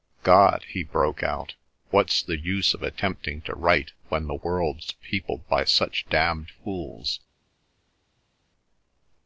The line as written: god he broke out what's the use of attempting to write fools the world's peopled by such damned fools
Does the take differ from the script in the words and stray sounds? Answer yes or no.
yes